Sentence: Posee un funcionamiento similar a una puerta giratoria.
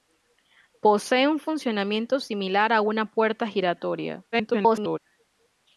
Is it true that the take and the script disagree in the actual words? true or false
true